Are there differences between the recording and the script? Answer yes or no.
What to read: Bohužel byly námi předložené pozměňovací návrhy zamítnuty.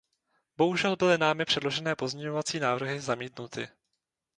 no